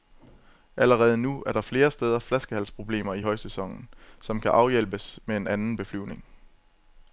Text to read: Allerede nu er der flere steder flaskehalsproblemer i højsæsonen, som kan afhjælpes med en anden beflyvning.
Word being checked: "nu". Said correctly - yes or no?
yes